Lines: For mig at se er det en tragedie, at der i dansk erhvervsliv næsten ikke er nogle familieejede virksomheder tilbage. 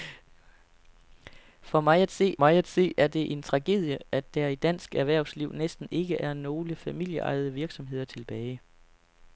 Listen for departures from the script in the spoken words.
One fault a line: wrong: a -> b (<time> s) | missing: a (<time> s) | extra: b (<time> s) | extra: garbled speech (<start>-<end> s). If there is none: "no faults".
extra: mig at se (2.4 s)